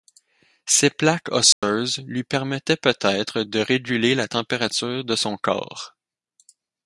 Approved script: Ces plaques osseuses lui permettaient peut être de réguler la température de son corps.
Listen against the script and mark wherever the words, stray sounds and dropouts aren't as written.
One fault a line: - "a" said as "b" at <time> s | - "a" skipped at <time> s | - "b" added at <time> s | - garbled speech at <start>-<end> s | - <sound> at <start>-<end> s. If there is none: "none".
- dropout at 1.5-1.6 s